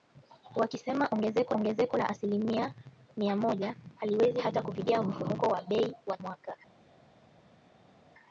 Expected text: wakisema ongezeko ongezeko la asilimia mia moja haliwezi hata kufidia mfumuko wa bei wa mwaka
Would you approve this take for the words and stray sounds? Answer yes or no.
yes